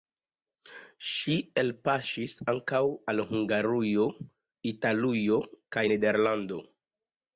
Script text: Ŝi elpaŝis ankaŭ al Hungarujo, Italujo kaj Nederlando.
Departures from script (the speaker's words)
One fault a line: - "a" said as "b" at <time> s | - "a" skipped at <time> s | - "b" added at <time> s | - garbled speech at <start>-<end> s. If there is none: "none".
none